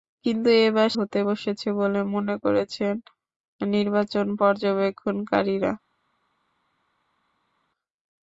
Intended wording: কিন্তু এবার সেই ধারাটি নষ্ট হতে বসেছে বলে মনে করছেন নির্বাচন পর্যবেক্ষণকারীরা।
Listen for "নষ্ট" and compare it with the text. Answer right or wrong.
wrong